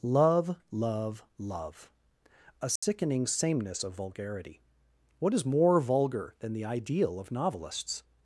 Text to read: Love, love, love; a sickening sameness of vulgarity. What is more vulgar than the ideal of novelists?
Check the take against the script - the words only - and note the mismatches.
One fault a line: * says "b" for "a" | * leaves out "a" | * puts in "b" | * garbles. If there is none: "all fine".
all fine